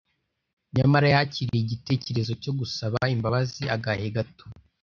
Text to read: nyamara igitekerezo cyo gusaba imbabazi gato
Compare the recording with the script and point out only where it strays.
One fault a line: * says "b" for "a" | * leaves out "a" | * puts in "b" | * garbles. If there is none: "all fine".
* puts in "yakiriye"
* puts in "agahe"